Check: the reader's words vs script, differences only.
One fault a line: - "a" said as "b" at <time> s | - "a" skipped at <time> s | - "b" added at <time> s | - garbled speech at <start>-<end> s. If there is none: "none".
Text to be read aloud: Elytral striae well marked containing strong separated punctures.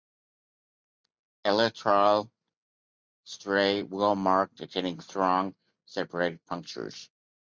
none